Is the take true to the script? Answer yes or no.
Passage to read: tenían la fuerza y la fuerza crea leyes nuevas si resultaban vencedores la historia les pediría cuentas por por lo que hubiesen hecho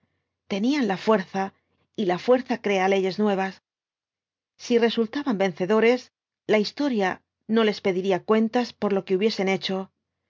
no